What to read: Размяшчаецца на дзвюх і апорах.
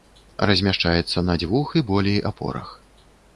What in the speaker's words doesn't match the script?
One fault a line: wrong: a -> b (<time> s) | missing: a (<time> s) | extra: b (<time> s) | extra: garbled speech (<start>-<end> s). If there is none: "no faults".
extra: болей (1.9 s)